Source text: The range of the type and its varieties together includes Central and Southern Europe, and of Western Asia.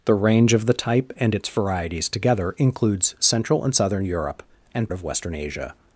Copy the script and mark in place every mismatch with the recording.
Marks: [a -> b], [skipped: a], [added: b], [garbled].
The range of the type and its varieties together includes Central and Southern Europe, and of Western Asia.